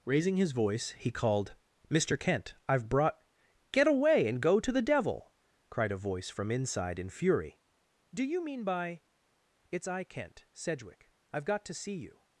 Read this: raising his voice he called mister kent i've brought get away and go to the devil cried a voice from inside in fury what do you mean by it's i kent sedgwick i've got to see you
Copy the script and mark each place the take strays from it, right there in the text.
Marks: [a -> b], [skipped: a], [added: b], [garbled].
raising his voice he called mister kent i've brought get away and go to the devil cried a voice from inside in fury [skipped: what] do you mean by it's i kent sedgwick i've got to see you